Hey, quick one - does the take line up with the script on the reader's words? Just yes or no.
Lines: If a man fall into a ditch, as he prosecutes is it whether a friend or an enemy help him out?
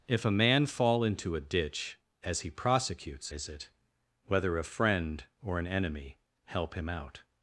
yes